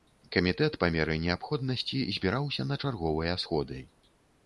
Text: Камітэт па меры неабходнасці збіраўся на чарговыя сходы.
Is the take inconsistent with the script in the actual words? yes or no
no